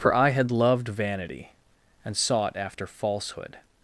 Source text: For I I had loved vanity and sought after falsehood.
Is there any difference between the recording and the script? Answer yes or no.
yes